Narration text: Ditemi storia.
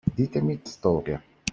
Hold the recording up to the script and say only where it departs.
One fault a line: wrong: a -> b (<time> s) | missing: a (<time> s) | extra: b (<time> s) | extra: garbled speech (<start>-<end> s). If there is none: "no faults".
no faults